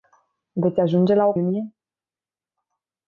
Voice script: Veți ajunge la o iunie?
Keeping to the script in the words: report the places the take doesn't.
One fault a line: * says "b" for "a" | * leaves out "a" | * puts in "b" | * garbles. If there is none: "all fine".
all fine